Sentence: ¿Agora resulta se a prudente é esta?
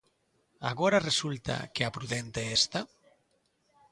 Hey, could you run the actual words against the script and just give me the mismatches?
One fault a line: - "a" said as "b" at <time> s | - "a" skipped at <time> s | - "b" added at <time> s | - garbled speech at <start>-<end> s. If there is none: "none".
- "se" said as "que" at 1.7 s